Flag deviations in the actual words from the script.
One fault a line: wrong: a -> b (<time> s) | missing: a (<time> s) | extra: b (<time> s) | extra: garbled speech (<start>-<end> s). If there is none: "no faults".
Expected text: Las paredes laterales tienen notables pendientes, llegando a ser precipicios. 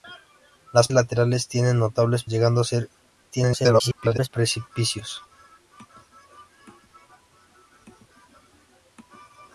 missing: paredes (0.9 s)
missing: pendientes (2.3 s)
extra: garbled speech (3.3-4.3 s)